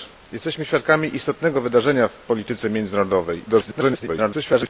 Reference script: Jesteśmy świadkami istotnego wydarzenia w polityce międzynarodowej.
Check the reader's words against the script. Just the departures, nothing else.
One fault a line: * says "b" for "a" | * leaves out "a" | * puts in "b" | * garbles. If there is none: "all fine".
* garbles